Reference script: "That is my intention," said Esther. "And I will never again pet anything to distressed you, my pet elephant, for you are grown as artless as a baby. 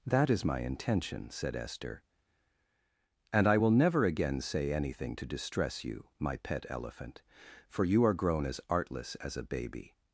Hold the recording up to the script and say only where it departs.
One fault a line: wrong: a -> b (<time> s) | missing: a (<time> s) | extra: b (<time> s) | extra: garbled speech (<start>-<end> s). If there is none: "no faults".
wrong: pet -> say (4.4 s)
wrong: distressed -> distress (5.3 s)